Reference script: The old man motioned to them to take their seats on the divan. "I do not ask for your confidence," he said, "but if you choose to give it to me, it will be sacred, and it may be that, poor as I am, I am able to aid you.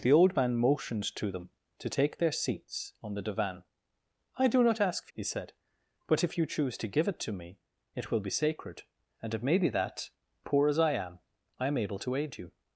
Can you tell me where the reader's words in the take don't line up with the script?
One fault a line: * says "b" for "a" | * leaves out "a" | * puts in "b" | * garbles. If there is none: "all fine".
* leaves out "your confidence"